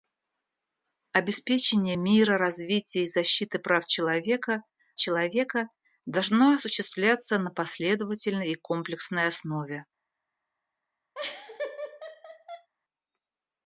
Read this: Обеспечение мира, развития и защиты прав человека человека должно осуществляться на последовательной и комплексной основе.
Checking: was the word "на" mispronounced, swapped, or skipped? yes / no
no